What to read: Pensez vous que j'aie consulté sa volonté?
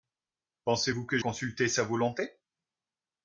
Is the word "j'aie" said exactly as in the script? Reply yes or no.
no